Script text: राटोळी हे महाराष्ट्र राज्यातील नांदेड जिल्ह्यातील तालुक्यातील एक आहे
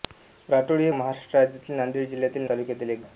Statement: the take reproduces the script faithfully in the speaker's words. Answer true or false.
true